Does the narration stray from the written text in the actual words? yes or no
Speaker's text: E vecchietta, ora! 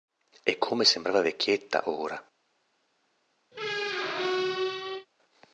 yes